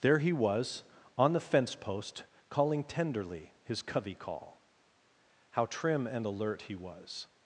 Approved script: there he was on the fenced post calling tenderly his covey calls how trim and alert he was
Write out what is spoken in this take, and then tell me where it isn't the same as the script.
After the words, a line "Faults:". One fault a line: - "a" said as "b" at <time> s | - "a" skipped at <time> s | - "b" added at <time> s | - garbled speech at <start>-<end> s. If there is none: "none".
there he was on the fence post calling tenderly his covey call how trim and alert he was
Faults:
- "fenced" said as "fence" at 1.4 s
- "calls" said as "call" at 4.2 s